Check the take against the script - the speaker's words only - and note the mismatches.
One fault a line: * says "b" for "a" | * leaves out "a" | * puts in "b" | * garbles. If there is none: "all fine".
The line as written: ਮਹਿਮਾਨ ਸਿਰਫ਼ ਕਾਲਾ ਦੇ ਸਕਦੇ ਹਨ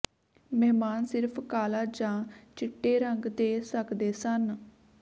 * puts in "ਜਾਂ ਚਿੱਟੇ ਰੰਗ"
* says "ਸਨ" for "ਹਨ"